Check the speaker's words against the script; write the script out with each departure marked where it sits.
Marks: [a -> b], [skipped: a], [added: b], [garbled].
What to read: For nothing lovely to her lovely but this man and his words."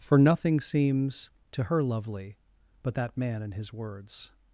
For nothing [lovely -> seems] to her lovely but [this -> that] man and his words."